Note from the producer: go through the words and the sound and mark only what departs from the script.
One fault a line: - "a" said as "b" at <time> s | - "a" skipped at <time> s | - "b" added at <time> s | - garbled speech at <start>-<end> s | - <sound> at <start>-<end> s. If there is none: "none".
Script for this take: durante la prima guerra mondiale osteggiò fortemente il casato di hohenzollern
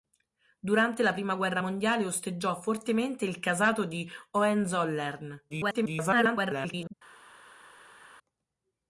- garbled speech at 5.5-6.9 s